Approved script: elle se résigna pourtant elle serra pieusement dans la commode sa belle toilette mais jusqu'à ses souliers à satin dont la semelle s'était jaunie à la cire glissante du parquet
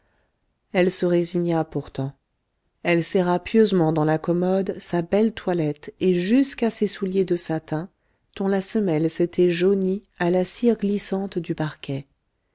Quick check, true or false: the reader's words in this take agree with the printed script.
false